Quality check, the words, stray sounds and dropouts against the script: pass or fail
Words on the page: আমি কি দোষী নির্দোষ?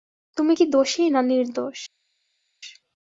fail